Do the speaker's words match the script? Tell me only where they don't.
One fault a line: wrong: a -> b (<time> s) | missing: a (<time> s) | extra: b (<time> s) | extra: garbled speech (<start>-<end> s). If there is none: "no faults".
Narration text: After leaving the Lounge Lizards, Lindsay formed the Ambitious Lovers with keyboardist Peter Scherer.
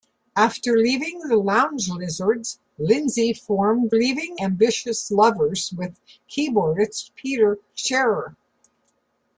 wrong: the -> leaving (3.9 s)